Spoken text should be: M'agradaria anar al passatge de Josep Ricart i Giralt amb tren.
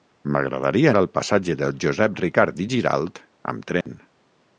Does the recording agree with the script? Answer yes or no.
no